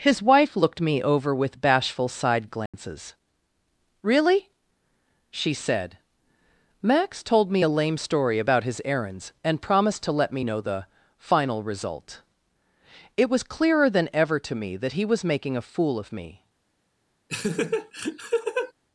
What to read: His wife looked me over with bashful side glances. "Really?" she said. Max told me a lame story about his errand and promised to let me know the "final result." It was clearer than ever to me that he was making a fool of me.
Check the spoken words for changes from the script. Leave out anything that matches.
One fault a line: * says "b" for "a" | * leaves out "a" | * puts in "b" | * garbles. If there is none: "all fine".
* says "errands" for "errand"